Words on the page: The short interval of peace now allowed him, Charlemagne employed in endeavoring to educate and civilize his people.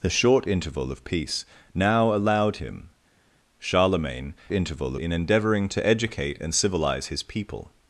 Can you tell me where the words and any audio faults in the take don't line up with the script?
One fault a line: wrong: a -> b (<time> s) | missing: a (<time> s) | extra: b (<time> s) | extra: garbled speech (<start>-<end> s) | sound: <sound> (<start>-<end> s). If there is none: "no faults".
wrong: employed -> interval (4.5 s)